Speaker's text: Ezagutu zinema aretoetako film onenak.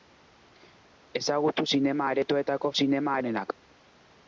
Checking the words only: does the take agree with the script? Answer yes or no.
no